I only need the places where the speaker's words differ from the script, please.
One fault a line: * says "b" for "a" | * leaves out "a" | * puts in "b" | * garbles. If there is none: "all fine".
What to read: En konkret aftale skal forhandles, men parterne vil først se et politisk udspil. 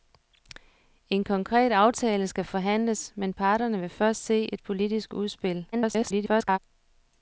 * garbles